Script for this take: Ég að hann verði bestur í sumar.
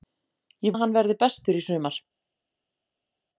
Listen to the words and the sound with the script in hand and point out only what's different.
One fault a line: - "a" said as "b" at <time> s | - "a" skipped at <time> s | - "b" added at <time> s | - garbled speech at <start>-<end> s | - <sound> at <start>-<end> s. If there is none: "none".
none